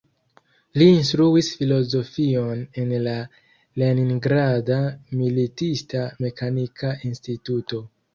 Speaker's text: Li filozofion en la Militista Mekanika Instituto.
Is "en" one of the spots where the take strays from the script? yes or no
no